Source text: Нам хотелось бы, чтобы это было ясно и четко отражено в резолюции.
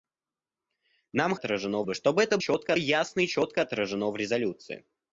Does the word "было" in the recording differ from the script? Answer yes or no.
yes